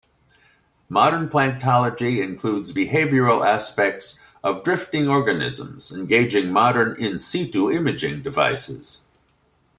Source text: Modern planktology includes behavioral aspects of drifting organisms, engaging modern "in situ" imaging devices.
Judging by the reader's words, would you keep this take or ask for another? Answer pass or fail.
pass